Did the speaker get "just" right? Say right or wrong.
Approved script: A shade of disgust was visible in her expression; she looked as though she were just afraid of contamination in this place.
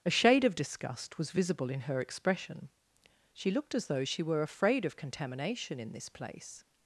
wrong